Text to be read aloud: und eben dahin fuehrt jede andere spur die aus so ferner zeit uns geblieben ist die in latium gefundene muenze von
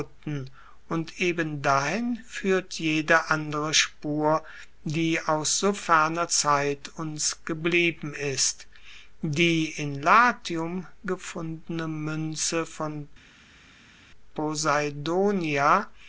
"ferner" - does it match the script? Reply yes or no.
yes